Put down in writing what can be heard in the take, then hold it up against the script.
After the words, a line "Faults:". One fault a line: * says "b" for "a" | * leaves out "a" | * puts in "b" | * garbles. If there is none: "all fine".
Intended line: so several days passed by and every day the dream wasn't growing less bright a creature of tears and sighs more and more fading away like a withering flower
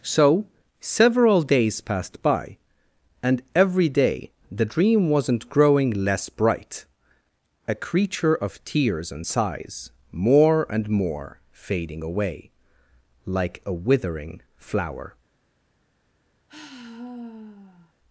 so several days passed by and every day the dream wasn't growing less bright a creature of tears and sighs more and more fading away like a withering flower
Faults:
all fine